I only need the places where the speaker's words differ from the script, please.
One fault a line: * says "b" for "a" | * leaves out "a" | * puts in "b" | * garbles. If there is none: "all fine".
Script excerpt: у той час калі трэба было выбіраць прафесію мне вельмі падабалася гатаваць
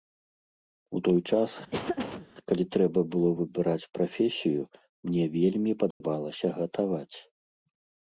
all fine